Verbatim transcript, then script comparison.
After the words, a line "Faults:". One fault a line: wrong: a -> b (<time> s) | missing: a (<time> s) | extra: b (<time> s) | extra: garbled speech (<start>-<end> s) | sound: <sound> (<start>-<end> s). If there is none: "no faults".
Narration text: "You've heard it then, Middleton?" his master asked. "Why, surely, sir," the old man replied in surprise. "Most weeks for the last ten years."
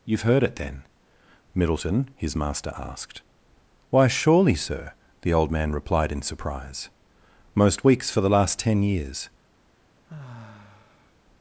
"You've heard it then, Middleton?" his master asked. "Why, surely, sir," the old man replied in surprise. "Most weeks for the last ten years."
Faults:
sound: sigh (10.1-11.1 s)